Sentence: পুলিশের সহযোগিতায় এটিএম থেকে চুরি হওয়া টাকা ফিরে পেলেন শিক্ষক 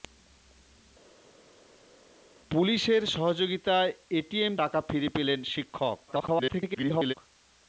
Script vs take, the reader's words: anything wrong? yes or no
yes